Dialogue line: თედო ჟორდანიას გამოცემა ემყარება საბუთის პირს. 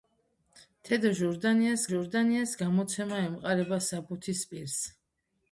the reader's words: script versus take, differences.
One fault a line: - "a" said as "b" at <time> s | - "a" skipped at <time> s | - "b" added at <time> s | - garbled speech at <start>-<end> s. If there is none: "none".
- "ჟორდანიას" added at 1.9 s